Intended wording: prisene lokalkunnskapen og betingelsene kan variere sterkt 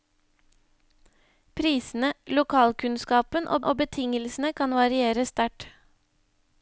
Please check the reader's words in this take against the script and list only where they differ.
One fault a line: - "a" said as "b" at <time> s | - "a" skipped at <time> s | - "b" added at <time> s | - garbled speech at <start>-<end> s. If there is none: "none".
- "og" added at 3.6 s